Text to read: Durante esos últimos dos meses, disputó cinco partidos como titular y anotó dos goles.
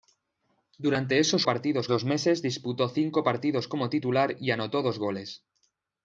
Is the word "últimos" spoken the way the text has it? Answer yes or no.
no